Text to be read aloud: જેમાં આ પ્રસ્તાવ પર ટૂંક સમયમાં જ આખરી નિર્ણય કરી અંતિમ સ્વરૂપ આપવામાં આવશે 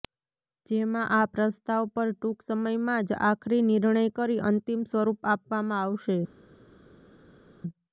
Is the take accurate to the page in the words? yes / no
yes